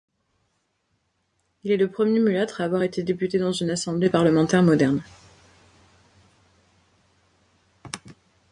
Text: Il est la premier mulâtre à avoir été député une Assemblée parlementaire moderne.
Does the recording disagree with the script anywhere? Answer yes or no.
yes